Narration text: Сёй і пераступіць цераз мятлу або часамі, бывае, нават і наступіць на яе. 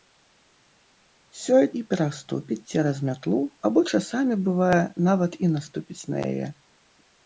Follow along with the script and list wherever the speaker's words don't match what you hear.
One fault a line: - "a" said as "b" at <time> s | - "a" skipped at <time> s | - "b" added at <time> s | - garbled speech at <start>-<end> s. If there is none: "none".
none